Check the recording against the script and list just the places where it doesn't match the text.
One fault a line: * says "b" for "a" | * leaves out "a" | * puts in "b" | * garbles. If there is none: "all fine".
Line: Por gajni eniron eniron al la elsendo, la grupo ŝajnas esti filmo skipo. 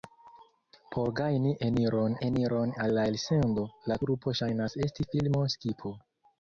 all fine